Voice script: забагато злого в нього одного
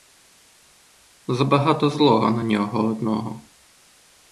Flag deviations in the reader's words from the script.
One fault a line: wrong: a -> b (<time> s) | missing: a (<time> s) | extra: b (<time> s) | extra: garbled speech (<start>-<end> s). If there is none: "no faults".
wrong: в -> на (2.3 s)